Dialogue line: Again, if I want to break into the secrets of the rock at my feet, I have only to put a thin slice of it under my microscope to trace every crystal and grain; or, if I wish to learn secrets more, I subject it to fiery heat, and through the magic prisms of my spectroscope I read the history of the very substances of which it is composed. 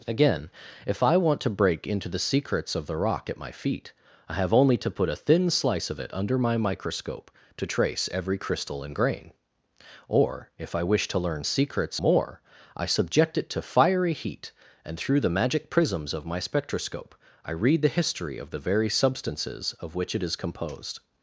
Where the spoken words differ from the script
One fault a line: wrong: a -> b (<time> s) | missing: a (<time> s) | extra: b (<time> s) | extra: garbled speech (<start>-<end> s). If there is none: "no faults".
no faults